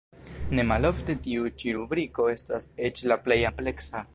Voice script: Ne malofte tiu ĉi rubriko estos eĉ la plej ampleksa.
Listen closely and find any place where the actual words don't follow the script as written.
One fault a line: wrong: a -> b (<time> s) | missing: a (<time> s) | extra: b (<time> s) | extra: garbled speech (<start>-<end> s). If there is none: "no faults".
wrong: estos -> estas (2.4 s)